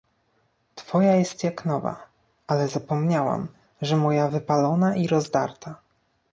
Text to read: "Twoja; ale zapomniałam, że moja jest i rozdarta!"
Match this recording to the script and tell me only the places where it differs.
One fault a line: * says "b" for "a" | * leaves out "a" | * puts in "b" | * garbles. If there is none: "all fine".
* puts in "jest jak nowa"
* says "wypalona" for "jest"